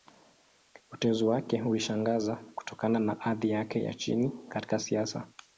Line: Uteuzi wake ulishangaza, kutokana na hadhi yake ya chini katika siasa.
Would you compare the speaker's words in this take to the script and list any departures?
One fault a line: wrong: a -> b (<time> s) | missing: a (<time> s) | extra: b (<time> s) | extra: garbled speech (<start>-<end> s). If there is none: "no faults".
no faults